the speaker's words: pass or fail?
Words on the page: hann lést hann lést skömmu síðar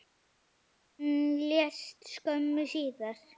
fail